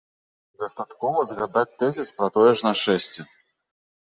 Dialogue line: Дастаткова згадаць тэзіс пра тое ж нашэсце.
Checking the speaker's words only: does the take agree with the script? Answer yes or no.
yes